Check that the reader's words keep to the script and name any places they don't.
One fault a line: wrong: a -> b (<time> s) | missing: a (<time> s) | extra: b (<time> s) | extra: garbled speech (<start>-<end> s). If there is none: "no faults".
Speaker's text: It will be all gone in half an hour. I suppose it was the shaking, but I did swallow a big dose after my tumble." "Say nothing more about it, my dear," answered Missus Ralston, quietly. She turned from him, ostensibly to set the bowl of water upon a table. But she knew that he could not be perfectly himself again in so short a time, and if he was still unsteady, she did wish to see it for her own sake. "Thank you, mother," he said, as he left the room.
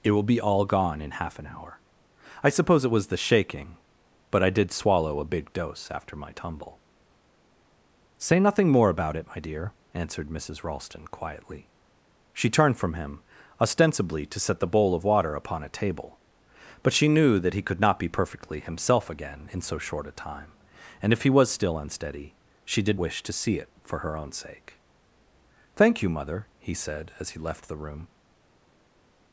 no faults